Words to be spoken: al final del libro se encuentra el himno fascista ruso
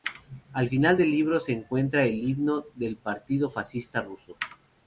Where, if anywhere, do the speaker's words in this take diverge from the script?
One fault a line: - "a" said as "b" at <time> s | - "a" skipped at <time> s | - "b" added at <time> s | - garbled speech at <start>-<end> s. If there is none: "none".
- "del partido" added at 2.8 s